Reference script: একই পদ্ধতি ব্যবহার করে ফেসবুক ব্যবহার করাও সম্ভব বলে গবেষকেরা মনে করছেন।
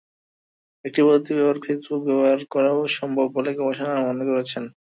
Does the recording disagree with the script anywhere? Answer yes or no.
yes